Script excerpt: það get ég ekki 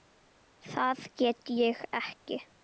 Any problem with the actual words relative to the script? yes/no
no